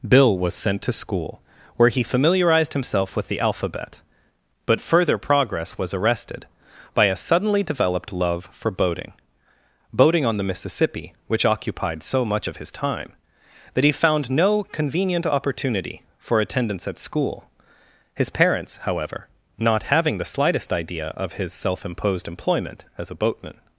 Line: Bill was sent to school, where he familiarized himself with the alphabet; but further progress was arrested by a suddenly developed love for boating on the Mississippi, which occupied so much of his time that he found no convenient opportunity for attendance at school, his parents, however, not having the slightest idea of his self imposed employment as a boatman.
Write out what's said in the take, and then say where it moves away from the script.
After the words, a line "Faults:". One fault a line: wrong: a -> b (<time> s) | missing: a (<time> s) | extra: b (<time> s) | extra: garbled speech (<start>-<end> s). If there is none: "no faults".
Bill was sent to school, where he familiarized himself with the alphabet; but further progress was arrested by a suddenly developed love for boating boating on the Mississippi, which occupied so much of his time that he found no convenient opportunity for attendance at school, his parents, however, not having the slightest idea of his self imposed employment as a boatman.
Faults:
extra: boating (9.9 s)